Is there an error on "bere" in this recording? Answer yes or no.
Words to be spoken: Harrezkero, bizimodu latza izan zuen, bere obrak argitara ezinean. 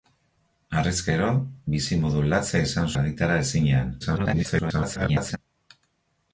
yes